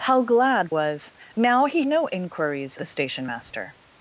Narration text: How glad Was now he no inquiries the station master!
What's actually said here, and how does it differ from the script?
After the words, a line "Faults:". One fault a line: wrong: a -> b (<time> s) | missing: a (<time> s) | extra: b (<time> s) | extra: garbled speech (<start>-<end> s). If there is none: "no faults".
How glad Was now he no inquiries the station master!
Faults:
no faults